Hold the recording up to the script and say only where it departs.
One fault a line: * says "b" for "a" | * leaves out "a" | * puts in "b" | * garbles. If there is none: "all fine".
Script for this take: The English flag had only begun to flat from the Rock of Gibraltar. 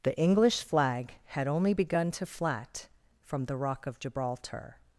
all fine